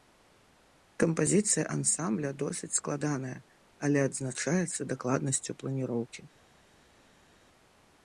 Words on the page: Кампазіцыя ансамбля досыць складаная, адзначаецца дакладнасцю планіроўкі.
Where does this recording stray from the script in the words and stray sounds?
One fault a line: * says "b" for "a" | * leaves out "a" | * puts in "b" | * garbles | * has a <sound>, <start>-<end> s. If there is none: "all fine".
* puts in "але"